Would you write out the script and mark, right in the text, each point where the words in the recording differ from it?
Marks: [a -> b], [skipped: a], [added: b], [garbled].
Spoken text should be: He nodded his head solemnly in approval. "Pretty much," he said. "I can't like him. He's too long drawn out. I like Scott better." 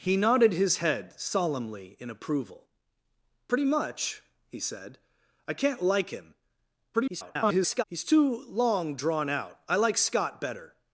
He nodded his head solemnly in approval. "Pretty much," he said. "I can't like him. [garbled] He's too long drawn out. I like Scott better."